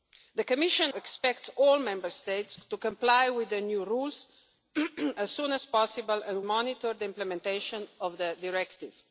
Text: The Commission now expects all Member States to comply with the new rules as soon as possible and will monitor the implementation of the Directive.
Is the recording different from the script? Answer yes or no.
yes